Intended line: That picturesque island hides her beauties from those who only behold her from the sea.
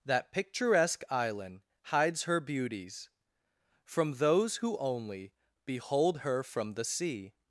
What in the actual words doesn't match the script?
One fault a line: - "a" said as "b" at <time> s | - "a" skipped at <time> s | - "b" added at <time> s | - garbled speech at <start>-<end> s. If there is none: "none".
none